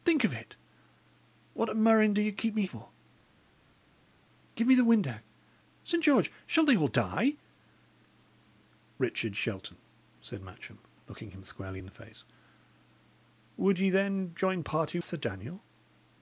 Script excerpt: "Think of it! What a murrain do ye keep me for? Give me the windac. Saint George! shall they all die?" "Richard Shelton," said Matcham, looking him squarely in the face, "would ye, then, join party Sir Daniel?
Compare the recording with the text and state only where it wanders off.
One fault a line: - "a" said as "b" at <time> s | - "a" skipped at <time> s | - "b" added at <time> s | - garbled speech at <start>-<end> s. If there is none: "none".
none